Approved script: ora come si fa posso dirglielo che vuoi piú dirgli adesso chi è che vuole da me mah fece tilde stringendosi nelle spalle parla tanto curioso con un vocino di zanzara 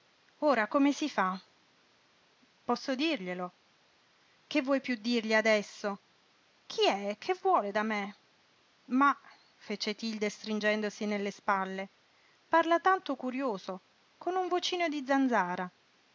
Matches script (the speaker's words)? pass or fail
pass